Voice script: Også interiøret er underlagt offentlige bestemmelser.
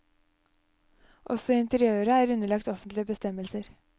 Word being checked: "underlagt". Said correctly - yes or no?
yes